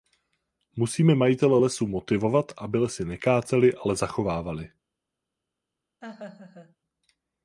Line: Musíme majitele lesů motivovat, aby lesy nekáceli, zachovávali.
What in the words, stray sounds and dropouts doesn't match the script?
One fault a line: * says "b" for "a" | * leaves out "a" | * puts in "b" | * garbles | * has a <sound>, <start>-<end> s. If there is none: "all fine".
* puts in "ale"
* has a laugh, 6.0-6.8 s